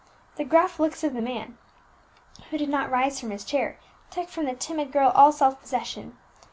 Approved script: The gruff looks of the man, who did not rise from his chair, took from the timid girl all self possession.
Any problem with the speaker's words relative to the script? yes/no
no